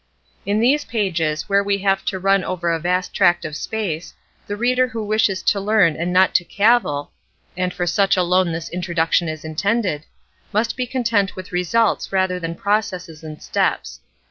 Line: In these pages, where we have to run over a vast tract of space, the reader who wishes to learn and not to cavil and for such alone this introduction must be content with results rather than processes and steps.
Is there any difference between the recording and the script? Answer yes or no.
yes